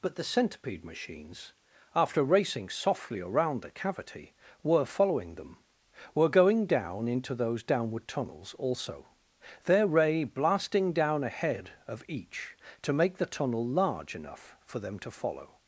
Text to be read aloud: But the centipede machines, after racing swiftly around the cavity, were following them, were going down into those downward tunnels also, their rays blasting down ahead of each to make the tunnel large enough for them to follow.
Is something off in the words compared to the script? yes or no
yes